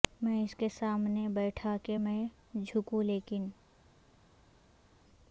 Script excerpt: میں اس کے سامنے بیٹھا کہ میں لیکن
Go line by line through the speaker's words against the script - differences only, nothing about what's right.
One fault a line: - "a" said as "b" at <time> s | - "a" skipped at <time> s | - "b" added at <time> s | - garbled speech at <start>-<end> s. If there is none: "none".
- "جھکوں" added at 2.6 s